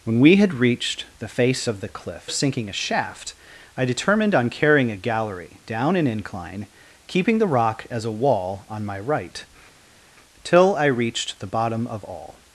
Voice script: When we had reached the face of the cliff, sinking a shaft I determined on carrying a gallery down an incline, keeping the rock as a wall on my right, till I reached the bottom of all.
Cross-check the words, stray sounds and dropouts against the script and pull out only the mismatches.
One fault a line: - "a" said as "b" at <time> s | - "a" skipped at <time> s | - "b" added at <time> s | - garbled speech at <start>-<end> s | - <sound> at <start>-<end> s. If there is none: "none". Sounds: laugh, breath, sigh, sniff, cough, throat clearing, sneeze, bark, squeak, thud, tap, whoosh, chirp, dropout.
none